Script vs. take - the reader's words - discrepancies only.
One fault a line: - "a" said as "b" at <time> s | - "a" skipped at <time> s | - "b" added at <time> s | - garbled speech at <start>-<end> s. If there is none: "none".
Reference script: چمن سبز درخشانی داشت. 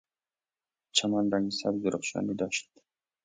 - "رنگ" added at 1.3 s